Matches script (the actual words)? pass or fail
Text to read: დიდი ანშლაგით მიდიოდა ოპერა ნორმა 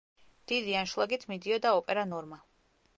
pass